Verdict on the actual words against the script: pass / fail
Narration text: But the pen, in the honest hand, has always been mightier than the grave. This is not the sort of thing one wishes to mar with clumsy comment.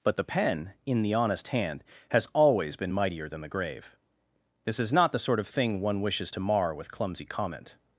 pass